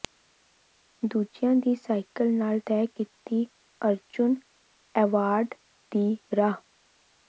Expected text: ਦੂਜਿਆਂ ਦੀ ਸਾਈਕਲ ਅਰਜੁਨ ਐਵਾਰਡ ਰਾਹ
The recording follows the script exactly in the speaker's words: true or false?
false